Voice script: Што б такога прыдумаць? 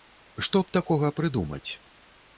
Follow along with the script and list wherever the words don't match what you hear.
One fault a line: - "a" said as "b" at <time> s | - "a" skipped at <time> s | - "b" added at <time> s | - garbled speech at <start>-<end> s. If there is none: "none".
none